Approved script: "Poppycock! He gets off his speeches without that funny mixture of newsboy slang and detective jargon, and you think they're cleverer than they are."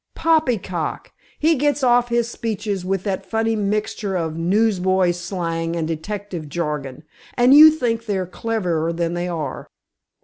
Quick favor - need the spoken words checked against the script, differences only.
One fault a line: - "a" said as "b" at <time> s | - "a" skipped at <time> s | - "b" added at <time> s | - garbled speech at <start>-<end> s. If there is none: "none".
- "without" said as "with" at 2.9 s